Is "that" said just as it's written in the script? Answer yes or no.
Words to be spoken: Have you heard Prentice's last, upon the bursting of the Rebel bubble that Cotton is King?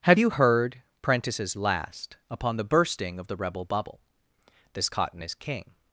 no